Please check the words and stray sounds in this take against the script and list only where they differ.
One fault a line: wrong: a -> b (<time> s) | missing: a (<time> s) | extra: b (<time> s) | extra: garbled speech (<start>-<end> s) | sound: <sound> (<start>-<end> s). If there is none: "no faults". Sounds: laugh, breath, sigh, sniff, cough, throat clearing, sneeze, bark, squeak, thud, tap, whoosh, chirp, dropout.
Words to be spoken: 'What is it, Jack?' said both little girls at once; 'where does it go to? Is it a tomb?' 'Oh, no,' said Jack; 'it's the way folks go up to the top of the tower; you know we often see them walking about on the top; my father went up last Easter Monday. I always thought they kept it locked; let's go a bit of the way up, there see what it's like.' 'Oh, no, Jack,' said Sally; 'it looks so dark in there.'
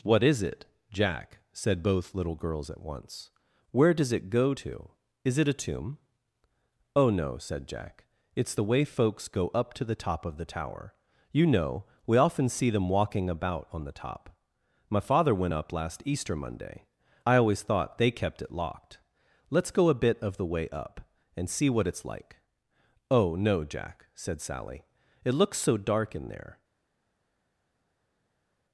wrong: there -> and (21.4 s)